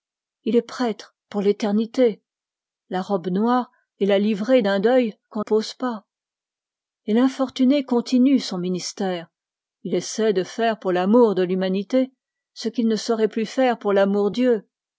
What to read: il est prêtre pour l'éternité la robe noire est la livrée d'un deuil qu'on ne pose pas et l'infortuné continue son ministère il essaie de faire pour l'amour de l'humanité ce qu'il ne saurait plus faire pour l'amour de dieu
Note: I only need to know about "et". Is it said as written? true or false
true